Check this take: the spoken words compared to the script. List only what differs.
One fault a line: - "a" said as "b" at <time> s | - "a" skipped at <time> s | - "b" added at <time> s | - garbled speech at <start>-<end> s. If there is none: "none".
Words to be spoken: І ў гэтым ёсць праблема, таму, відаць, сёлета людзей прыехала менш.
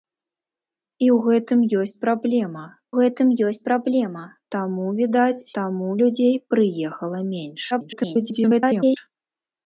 - "гэтым ёсць праблема" added at 3.0 s
- "сёлета" said as "таму" at 5.6 s
- garbled speech at 7.7-9.0 s